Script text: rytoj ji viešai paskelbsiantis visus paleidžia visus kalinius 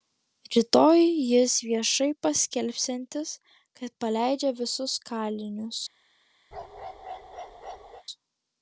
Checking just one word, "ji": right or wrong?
wrong